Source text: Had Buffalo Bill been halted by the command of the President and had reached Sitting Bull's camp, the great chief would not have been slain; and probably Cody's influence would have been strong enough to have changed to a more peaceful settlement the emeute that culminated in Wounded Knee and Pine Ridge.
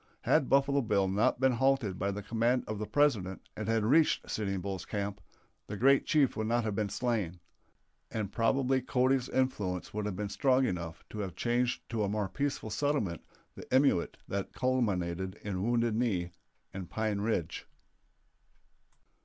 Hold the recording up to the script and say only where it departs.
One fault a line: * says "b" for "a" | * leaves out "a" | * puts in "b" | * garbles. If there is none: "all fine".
* puts in "not"